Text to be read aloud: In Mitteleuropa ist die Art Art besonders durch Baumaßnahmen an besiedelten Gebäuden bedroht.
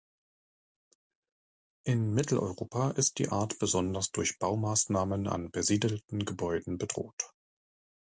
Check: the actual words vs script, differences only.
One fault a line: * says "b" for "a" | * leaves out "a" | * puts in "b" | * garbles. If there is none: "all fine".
* leaves out "Art"